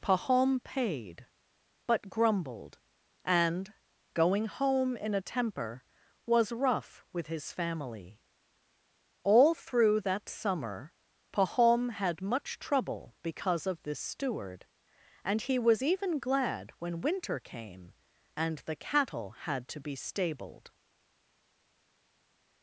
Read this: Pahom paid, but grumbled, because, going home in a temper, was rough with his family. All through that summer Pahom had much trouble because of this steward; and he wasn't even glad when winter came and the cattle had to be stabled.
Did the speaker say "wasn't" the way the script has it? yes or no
no